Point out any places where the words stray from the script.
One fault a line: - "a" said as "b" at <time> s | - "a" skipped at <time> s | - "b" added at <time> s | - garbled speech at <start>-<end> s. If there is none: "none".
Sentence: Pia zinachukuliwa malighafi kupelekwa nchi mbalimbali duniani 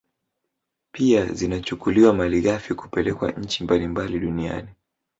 none